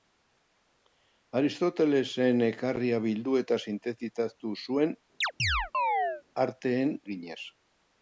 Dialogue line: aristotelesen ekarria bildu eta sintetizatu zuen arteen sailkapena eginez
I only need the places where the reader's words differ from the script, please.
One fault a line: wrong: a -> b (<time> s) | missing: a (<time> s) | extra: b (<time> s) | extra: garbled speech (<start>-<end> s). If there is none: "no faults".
missing: sailkapena (6.9 s)